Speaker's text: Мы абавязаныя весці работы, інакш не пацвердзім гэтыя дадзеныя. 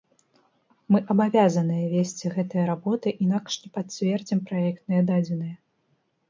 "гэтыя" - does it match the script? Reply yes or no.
no